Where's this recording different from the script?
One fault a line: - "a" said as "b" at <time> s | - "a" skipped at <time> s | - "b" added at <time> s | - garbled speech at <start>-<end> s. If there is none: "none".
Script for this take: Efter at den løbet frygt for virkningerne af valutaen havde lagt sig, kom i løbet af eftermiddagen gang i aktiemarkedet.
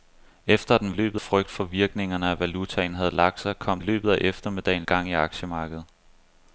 none